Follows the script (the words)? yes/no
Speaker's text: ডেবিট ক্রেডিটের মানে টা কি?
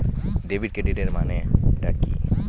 yes